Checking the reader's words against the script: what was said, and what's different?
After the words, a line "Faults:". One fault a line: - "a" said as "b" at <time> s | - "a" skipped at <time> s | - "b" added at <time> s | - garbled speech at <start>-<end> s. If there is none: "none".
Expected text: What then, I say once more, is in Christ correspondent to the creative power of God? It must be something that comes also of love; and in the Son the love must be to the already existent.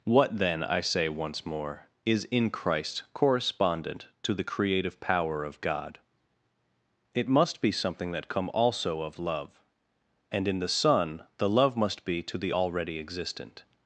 What then, I say once more, is in Christ correspondent to the creative power of God? It must be something that come also of love; and in the Son the love must be to the already existent.
Faults:
- "comes" said as "come" at 8.3 s